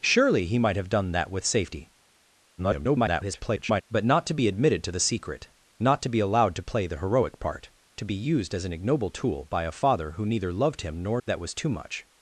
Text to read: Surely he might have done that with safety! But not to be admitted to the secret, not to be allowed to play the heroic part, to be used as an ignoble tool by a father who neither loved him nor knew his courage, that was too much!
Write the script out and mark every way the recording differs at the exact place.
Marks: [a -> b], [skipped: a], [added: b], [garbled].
Surely he might have done that with safety! [garbled] But not to be admitted to the secret, not to be allowed to play the heroic part, to be used as an ignoble tool by a father who neither loved him nor [skipped: knew his courage,] that was too much!